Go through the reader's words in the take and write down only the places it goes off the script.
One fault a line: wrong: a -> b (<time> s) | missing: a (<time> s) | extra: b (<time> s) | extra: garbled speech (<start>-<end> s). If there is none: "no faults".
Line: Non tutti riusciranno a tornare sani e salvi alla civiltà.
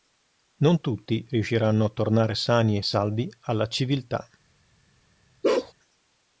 no faults